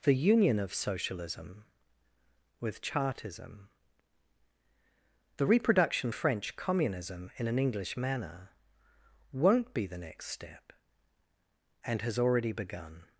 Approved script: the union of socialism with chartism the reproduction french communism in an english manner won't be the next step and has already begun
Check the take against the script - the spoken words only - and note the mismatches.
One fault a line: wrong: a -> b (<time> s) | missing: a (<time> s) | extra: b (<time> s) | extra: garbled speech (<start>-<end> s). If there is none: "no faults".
no faults